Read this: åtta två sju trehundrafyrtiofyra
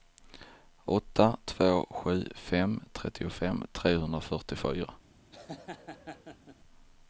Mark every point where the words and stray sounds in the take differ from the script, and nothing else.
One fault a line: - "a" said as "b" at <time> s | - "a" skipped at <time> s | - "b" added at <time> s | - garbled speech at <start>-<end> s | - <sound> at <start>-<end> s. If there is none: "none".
- "fem trettiofem" added at 2.4 s
- laugh at 5.3-6.6 s